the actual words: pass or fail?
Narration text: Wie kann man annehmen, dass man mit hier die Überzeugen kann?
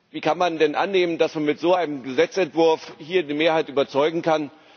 fail